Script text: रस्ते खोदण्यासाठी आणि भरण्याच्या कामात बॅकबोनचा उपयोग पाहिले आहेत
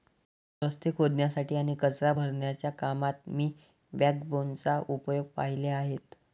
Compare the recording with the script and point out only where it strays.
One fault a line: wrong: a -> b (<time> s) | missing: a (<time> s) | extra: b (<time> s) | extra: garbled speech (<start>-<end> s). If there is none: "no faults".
extra: कचरा (1.8 s)
extra: मी (3.3 s)